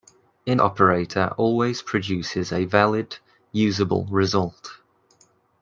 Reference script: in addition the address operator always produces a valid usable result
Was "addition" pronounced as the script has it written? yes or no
no